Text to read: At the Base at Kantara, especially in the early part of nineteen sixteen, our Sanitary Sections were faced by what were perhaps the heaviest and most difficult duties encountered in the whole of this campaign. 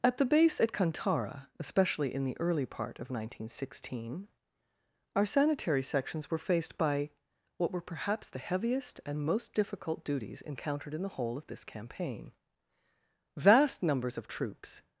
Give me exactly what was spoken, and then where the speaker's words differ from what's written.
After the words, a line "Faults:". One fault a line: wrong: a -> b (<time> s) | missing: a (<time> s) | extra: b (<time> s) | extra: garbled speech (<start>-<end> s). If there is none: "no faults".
At the Base at Kantara, especially in the early part of nineteen sixteen, our Sanitary Sections were faced by what were perhaps the heaviest and most difficult duties encountered in the whole of this campaign. Vast numbers of troops
Faults:
extra: Vast numbers of troops (13.4 s)